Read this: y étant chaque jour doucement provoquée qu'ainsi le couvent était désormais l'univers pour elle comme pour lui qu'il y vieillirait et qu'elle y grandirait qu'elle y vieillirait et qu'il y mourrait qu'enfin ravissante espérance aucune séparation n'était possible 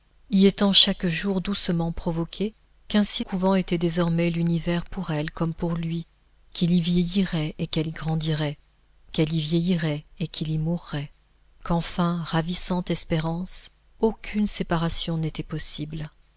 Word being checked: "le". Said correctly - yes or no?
no